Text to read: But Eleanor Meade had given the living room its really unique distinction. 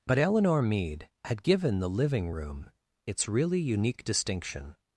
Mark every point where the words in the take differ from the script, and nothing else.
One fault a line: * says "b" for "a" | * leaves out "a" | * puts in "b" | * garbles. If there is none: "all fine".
all fine